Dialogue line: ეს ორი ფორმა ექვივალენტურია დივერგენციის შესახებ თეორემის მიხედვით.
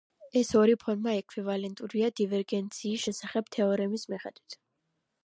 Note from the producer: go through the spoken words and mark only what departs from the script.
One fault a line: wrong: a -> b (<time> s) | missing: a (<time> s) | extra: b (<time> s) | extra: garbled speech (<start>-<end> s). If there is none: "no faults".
no faults